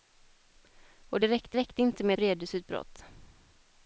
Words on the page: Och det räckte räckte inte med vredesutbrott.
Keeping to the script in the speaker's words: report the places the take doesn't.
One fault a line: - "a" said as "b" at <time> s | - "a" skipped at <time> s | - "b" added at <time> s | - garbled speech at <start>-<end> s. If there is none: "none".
none